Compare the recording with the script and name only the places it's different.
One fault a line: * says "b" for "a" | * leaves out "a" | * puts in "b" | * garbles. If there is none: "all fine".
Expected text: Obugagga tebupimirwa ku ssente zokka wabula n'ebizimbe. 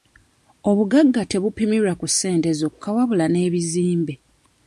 all fine